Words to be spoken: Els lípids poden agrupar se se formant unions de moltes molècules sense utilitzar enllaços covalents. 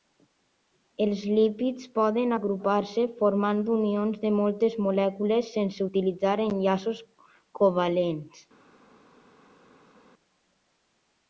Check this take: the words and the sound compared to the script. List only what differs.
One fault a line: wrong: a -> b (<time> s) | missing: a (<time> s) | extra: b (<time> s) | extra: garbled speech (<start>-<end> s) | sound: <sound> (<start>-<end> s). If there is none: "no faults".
missing: se (3.0 s)